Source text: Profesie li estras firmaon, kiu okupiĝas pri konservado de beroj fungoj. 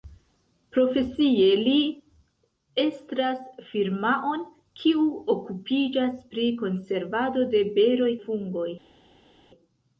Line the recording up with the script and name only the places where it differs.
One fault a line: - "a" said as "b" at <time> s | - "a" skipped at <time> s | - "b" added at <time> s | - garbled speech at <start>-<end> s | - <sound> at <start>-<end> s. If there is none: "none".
none